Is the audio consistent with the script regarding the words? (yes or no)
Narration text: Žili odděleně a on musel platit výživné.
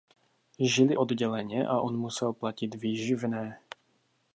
yes